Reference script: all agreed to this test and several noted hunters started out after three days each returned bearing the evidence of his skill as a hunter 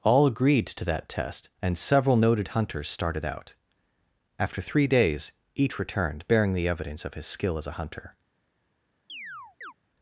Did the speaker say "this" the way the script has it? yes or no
no